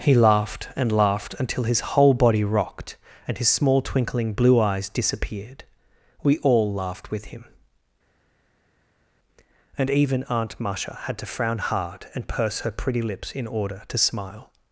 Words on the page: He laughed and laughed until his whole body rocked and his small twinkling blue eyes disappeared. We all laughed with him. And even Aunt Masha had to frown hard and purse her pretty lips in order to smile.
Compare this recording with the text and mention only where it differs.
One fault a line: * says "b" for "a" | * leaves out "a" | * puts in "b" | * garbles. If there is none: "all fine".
all fine